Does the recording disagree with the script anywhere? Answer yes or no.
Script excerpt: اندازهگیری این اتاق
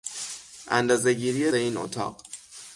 no